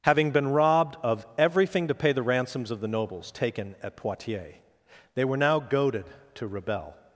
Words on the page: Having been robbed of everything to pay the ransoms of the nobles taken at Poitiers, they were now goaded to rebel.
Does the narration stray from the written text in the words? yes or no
no